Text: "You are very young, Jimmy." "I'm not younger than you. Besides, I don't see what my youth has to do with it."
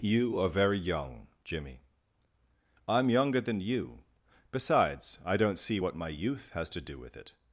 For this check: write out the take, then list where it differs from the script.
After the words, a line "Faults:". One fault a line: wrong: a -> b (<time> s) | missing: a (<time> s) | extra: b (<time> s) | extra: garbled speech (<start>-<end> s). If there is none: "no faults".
"You are very young, Jimmy." "I'm younger than you. Besides, I don't see what my youth has to do with it."
Faults:
missing: not (3.1 s)